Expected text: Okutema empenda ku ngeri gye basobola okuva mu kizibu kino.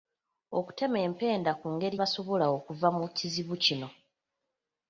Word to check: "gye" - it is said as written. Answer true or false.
false